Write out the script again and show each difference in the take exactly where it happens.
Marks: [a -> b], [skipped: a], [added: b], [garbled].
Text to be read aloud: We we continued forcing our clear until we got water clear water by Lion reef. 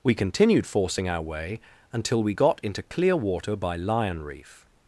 We [skipped: we] continued forcing our [clear -> way] until we got [water -> into] clear water by Lion reef.